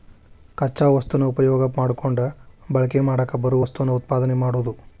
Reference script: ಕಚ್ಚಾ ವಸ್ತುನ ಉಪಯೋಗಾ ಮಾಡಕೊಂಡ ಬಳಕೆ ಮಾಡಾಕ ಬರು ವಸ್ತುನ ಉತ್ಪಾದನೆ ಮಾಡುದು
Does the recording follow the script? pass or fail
pass